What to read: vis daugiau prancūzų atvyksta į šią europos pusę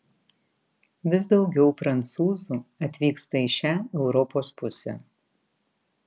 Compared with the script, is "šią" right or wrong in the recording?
right